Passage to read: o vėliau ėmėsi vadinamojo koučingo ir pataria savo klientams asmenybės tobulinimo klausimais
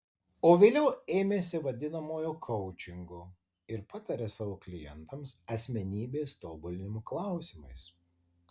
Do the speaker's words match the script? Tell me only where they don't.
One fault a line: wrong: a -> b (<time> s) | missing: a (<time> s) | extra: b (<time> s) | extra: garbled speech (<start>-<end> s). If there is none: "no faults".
no faults